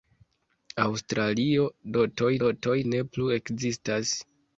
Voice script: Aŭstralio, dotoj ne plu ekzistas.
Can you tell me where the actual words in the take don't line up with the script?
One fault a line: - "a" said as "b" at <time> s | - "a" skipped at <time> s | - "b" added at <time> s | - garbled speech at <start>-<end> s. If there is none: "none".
- "dotoj" added at 2.4 s